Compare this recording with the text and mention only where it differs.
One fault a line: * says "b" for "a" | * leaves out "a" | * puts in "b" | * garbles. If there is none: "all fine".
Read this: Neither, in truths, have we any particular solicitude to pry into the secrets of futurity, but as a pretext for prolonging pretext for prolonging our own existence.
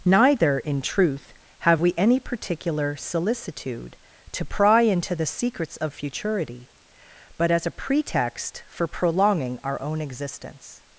* says "truth" for "truths"
* leaves out "pretext for prolonging"